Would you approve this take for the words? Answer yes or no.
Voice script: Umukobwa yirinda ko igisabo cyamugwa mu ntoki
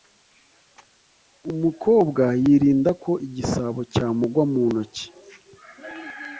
yes